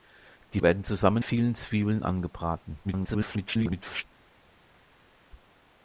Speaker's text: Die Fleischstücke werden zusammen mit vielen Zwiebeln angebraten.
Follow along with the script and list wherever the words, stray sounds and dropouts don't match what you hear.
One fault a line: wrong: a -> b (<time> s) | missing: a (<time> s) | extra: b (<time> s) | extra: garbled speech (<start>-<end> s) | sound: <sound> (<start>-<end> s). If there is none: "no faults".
missing: Fleischstücke (0.6 s)
missing: mit (1.2 s)
extra: garbled speech (2.8-4.1 s)